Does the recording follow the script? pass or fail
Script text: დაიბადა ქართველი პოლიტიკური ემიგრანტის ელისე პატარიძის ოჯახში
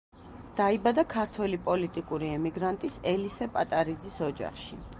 pass